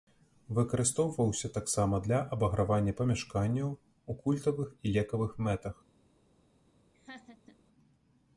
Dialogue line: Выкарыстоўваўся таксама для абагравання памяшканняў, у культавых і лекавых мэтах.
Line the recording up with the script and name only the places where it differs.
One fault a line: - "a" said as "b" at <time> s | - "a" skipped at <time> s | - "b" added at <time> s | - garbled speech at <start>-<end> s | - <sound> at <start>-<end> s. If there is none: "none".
- laugh at 6.9-7.6 s